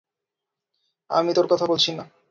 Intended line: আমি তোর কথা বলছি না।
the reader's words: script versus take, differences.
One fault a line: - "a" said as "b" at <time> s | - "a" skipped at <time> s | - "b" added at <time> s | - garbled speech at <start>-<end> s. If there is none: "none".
none